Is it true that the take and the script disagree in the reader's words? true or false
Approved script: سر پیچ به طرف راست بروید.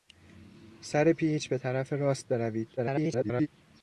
true